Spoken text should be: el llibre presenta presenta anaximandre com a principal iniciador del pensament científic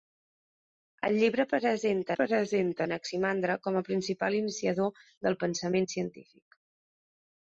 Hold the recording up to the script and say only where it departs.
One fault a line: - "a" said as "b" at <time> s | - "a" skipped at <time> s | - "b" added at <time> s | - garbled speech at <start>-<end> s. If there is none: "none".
none